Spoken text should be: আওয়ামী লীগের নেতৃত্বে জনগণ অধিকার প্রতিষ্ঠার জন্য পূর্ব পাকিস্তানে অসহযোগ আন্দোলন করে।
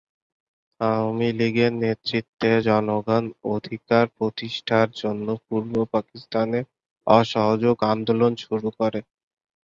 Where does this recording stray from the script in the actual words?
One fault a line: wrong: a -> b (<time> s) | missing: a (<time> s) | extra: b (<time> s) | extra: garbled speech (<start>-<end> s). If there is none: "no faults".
extra: শুরু (8.4 s)